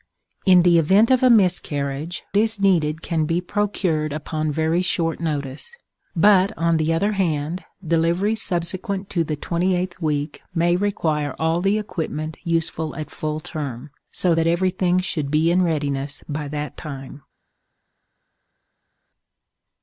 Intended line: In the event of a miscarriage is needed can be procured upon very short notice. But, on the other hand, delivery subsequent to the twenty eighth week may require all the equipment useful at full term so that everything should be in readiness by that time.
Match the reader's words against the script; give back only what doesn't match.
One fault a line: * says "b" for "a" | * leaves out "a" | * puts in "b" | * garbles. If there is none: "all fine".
all fine